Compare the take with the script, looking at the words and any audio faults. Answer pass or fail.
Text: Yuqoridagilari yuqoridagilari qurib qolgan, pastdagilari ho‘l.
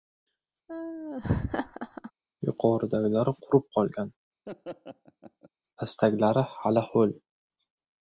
fail